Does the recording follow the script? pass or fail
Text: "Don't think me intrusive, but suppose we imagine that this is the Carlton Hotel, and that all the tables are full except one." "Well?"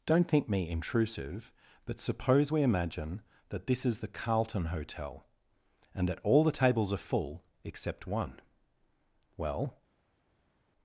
pass